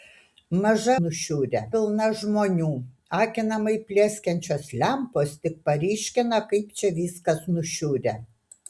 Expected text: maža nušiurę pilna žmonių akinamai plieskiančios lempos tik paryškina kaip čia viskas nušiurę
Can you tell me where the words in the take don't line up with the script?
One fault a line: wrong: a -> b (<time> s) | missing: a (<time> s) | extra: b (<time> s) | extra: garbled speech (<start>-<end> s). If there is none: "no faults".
no faults